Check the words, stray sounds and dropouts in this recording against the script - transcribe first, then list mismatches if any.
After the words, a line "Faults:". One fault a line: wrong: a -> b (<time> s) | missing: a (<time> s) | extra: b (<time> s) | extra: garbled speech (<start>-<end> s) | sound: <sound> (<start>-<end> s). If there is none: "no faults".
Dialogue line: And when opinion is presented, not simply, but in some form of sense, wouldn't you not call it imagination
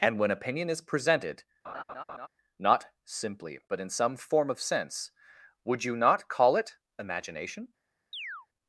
And when opinion is presented, not simply, but in some form of sense, would you not call it imagination
Faults:
sound: laugh (1.6-2.3 s)
wrong: wouldn't -> would (5.6 s)
sound: chirp (8.1-8.5 s)